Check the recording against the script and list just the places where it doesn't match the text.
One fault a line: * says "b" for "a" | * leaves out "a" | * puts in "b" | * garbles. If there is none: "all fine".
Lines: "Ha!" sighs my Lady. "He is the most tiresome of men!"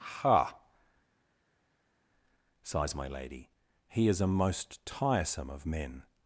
* says "a" for "the"